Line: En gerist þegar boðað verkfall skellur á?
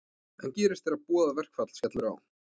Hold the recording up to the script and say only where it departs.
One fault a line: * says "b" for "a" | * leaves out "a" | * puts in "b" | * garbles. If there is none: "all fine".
all fine